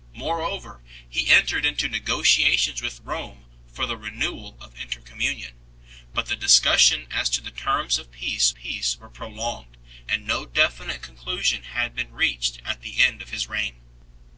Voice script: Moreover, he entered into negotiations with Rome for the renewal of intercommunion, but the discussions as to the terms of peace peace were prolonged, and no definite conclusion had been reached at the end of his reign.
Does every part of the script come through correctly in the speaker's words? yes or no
yes